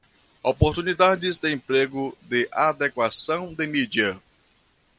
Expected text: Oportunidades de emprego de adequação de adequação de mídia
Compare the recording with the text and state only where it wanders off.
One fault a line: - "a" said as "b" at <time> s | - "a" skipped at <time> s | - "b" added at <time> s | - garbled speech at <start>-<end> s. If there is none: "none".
- "adequação de" skipped at 3.7 s